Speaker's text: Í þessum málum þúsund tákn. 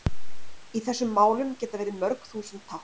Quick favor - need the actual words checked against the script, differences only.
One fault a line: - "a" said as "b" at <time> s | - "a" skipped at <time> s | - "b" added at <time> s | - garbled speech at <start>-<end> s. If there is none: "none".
- "geta verið mörg" added at 1.6 s